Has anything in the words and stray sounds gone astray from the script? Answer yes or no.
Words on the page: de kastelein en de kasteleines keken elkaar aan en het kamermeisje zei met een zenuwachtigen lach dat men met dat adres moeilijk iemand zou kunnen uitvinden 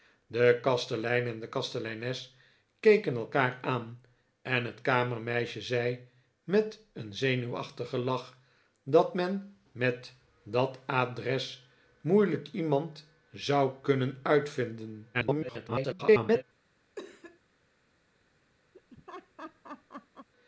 yes